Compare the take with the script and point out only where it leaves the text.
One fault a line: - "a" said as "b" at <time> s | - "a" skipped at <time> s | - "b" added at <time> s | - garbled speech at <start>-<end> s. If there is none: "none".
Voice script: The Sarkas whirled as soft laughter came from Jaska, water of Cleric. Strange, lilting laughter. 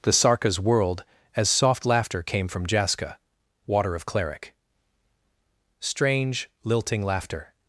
none